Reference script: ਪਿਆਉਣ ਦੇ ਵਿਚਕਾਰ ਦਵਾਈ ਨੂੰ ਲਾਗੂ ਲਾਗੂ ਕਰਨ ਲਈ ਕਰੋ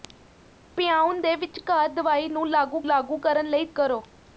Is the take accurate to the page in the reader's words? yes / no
yes